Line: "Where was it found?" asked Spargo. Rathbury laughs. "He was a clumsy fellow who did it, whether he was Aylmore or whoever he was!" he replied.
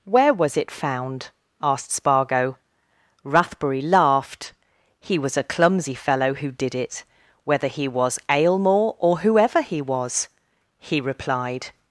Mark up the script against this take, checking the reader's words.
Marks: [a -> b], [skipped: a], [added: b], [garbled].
"Where was it found?" asked Spargo. Rathbury [laughs. -> laughed] "He was a clumsy fellow who did it, whether he was Aylmore or whoever he was!" he replied.